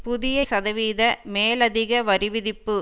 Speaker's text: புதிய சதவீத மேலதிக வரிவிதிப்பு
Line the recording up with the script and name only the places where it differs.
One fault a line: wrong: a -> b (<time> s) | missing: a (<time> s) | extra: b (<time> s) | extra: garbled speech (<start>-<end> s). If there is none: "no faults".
no faults